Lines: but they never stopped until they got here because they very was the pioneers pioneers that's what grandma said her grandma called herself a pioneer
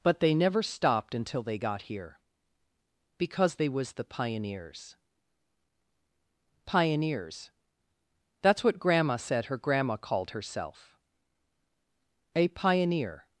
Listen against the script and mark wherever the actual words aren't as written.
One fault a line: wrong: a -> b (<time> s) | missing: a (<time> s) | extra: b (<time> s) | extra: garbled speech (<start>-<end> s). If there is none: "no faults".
missing: very (3.7 s)